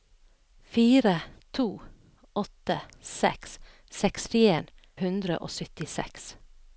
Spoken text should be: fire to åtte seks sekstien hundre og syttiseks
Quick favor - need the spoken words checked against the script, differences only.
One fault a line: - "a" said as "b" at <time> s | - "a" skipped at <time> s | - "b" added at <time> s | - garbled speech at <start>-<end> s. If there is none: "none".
none